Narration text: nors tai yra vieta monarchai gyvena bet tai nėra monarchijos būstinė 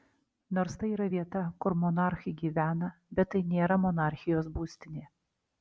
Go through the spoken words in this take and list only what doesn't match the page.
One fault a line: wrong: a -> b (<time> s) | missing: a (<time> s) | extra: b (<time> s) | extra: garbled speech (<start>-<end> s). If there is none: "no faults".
extra: kur (1.7 s)